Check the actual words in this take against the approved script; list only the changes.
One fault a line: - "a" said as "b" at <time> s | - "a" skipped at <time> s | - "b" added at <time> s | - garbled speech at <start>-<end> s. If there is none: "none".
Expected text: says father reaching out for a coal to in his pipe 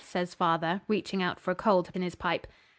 none